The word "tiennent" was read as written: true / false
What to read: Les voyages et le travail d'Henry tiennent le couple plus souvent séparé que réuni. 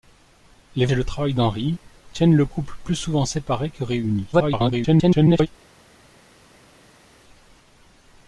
true